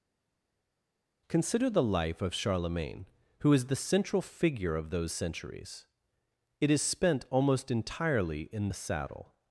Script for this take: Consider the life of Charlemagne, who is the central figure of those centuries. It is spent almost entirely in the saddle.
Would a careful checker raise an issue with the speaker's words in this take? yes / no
no